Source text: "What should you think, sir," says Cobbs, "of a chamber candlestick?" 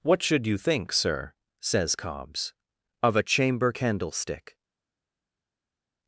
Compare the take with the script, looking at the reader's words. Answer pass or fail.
pass